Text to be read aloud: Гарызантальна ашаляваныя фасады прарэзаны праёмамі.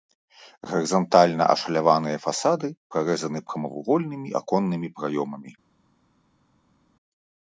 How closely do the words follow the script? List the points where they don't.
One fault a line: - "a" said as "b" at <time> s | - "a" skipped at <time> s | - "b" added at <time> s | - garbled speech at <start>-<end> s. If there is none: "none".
- "прамавугольнымі аконнымі" added at 3.5 s